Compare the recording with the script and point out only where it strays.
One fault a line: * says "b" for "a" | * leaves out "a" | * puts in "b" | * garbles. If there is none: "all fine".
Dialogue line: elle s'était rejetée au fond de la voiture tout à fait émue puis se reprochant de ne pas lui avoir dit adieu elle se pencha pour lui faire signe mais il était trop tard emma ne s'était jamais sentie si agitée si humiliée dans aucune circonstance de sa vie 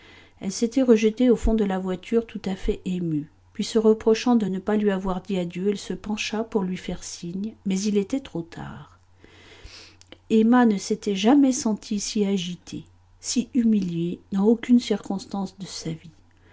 all fine